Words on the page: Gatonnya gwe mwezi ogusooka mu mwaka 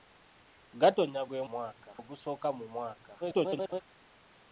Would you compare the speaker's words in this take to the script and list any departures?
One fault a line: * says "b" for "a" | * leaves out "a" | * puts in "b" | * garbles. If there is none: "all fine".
* says "mwaka" for "mwezi"
* garbles